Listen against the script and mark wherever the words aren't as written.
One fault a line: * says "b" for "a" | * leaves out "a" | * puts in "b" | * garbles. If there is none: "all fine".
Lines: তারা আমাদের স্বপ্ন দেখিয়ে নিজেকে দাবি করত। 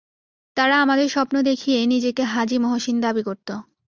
* puts in "হাজী মহসিন"